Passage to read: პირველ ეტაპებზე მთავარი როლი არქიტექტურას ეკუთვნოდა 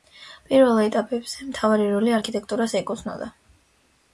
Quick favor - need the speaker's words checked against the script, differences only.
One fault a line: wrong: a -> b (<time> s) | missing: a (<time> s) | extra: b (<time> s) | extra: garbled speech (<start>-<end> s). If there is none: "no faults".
no faults